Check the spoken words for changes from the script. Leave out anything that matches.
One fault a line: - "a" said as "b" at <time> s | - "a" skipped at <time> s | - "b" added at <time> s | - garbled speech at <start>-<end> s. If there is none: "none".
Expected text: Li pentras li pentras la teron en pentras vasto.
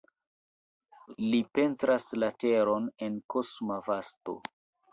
- "li pentras" skipped at 2.1 s
- "pentras" said as "kosma" at 3.4 s